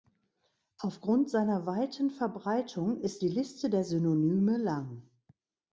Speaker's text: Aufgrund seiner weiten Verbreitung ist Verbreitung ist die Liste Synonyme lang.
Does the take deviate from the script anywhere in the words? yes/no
yes